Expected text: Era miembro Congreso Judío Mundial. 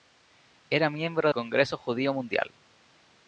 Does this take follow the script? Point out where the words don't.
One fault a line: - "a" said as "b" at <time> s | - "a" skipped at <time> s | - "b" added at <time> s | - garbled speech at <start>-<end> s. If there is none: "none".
none